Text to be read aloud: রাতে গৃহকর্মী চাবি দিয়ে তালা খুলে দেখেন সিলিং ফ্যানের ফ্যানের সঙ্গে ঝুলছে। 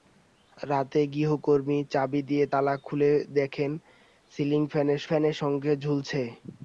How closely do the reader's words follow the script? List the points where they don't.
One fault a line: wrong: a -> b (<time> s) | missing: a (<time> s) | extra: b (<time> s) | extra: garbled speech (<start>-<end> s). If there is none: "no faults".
no faults